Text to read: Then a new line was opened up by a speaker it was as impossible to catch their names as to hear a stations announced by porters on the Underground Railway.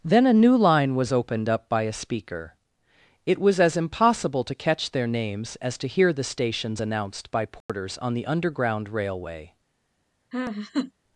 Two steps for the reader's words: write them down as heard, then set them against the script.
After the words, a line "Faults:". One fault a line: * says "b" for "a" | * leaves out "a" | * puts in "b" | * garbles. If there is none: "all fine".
Then a new line was opened up by a speaker it was as impossible to catch their names as to hear the stations announced by porters on the Underground Railway.
Faults:
* says "the" for "a"